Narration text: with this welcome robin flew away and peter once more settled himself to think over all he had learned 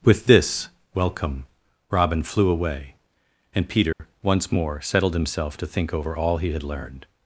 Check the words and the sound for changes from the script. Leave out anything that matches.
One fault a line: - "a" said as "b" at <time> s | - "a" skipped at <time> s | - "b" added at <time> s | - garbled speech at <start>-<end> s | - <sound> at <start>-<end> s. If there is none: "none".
- dropout at 3.9-4.0 s